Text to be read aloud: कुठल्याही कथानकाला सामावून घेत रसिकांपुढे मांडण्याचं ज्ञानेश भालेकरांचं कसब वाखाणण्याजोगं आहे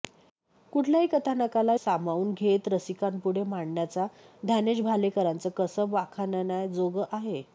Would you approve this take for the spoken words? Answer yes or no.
yes